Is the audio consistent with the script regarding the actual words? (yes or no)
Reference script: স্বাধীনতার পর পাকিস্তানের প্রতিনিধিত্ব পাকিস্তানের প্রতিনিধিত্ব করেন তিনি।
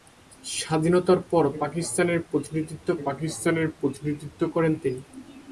yes